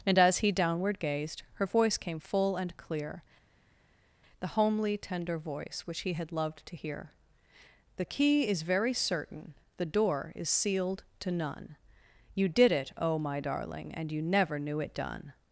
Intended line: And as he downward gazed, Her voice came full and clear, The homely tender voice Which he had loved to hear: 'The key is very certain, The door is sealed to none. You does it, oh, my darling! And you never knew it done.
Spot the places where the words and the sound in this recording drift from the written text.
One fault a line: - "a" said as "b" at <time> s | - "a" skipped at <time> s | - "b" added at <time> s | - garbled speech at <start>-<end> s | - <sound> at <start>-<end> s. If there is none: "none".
- "does" said as "did" at 12.5 s